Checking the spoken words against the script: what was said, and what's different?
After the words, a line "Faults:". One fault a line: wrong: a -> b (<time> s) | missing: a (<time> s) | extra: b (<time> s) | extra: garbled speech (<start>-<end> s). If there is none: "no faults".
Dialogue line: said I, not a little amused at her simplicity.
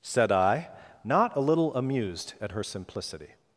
said I, not a little amused at her simplicity.
Faults:
no faults